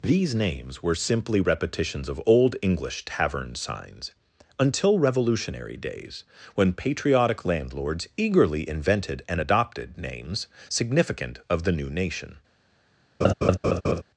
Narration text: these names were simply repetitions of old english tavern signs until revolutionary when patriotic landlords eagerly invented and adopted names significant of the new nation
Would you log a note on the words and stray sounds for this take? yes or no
yes